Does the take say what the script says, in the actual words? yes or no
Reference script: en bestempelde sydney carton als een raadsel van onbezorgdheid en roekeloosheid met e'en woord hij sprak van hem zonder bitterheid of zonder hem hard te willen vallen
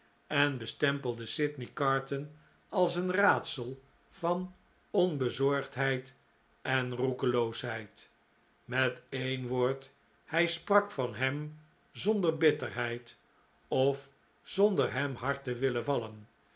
yes